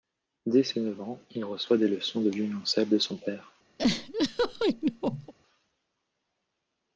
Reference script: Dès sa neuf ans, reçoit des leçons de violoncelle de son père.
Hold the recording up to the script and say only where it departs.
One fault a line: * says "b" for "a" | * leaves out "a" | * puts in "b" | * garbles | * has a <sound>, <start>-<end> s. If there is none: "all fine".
* says "ses" for "sa"
* puts in "il"
* has a laugh, 3.8-5.3 s